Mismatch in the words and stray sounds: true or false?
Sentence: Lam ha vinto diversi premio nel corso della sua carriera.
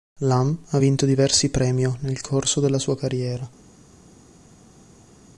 false